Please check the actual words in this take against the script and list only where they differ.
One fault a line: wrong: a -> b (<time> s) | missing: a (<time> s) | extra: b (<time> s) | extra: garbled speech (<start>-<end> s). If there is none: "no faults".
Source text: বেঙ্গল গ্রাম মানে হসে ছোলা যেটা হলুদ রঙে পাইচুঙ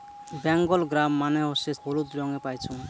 missing: ছোলা যেটা (1.7 s)